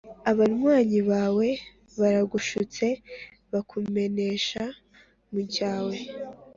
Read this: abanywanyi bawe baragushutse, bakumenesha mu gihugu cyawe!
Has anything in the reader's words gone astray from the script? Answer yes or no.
yes